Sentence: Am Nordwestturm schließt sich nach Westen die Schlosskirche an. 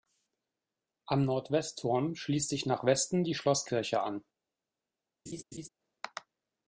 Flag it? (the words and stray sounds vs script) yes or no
yes